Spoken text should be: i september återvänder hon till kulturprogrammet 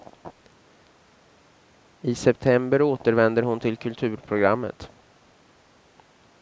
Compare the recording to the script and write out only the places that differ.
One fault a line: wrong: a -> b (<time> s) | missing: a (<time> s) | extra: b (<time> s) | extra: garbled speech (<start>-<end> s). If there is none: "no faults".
no faults